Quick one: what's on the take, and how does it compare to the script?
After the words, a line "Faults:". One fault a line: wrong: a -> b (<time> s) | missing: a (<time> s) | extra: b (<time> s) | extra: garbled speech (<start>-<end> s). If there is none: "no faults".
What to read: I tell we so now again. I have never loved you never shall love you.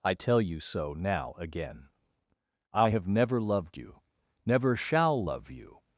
I tell you so now again. I have never loved you never shall love you.
Faults:
wrong: we -> you (0.4 s)